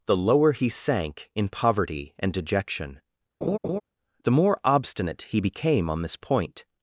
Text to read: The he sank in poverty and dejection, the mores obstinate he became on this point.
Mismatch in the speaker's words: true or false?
true